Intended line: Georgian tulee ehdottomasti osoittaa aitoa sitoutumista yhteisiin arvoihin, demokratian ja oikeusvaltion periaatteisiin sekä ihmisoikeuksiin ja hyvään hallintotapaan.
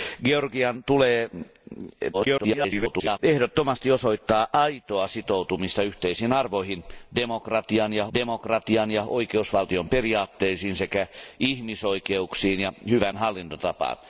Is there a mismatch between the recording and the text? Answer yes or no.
yes